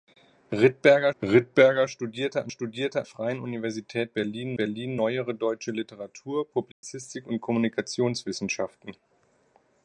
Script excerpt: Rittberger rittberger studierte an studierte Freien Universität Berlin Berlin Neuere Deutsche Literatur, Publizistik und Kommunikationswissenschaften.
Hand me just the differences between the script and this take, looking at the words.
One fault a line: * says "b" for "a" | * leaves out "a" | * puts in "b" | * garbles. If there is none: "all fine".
all fine